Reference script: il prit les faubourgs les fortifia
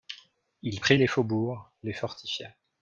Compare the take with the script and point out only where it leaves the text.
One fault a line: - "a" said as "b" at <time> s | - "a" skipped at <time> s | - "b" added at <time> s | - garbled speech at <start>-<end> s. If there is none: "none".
none